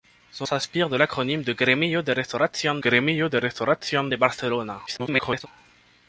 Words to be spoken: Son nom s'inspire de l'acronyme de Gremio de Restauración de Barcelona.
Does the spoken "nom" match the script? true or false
false